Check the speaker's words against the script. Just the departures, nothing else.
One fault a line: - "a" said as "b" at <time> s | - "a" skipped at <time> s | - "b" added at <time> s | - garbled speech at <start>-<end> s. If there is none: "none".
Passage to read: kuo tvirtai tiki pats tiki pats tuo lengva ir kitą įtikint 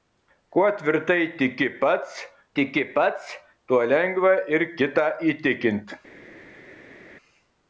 none